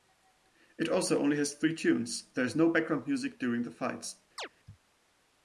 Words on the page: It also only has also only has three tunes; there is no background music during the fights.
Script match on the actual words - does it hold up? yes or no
no